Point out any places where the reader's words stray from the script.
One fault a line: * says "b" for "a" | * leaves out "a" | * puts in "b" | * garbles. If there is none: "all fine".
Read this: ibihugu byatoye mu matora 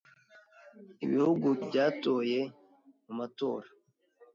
all fine